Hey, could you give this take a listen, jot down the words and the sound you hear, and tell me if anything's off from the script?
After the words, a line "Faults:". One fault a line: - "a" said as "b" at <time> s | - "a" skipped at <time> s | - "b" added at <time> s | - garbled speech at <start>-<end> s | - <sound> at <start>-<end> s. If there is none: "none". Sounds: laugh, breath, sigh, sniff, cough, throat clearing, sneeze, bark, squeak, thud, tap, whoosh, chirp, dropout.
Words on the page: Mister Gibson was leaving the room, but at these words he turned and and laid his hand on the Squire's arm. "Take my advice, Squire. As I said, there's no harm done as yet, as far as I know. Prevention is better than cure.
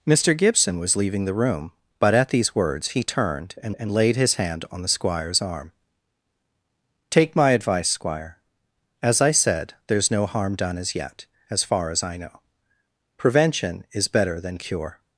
Mister Gibson was leaving the room, but at these words he turned and and laid his hand on the Squire's arm. "Take my advice, Squire. As I said, there's no harm done as yet, as far as I know. Prevention is better than cure.
Faults:
none